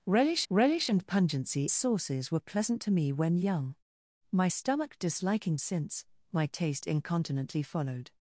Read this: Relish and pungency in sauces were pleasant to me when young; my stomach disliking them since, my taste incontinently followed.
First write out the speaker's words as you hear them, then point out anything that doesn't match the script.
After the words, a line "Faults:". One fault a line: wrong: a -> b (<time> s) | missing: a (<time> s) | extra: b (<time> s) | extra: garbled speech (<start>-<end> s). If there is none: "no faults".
Relish relish and pungency sauces were pleasant to me when young; my stomach disliking since, my taste incontinently followed.
Faults:
extra: relish (0.5 s)
missing: in (1.7 s)
missing: them (5.6 s)